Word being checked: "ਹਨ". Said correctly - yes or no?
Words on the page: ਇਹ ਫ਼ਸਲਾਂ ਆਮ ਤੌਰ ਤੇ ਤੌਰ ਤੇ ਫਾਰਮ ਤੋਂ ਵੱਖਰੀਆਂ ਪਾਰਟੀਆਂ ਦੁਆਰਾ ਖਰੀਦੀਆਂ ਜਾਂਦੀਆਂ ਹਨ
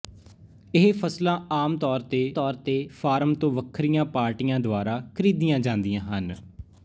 yes